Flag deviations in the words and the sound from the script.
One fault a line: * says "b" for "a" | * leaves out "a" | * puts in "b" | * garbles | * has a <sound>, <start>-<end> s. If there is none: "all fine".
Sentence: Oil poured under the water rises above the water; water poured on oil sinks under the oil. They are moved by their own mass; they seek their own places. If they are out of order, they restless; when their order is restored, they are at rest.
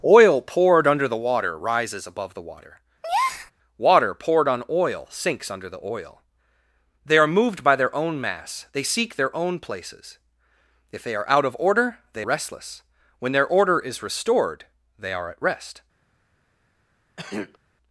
* has a breath, 3.0-3.5 s
* has a throat clearing, 17.2-17.6 s